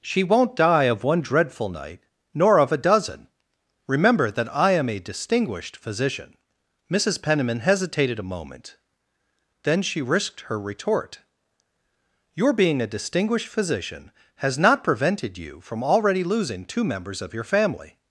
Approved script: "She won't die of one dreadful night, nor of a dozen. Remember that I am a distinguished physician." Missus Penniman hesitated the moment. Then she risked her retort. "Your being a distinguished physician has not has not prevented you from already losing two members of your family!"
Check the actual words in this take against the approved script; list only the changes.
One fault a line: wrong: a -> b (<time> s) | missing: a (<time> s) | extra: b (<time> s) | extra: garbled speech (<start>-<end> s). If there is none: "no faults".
wrong: the -> a (8.2 s)
missing: has not (14.8 s)